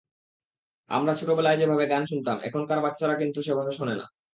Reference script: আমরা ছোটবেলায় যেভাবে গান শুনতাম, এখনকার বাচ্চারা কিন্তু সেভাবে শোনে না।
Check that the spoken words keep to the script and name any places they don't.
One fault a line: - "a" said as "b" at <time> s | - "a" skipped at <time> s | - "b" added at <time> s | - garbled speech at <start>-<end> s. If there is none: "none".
none